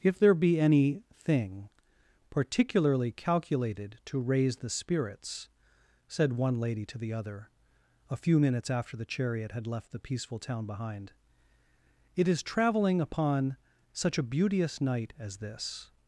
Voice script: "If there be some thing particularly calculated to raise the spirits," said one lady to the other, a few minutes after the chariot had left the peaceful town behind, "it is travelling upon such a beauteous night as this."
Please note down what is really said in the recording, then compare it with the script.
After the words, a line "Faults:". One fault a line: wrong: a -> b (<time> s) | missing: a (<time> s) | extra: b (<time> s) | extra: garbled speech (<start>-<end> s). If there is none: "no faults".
"If there be any thing particularly calculated to raise the spirits," said one lady to the other, a few minutes after the chariot had left the peaceful town behind, "it is travelling upon such a beauteous night as this."
Faults:
wrong: some -> any (0.6 s)